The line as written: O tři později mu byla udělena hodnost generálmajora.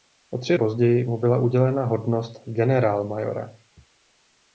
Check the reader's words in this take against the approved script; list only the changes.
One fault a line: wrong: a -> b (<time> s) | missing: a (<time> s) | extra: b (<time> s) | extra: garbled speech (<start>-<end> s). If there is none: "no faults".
no faults